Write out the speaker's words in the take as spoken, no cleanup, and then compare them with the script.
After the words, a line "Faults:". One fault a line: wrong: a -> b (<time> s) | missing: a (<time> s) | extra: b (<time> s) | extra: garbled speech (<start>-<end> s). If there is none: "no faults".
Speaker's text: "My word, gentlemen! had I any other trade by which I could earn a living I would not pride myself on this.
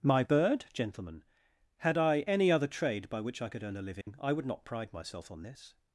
"My bird, gentlemen! had I any other trade by which I could earn a living I would not pride myself on this.
Faults:
wrong: word -> bird (0.2 s)